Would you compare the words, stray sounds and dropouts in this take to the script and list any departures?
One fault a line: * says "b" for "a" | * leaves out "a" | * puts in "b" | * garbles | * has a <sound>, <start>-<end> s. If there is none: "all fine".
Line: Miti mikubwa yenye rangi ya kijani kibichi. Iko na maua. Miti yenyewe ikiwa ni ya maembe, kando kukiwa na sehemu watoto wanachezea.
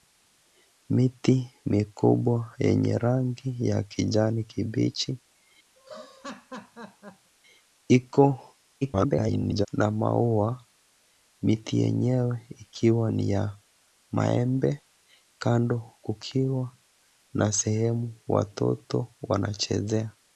* has a laugh, 5.8-7.3 s
* garbles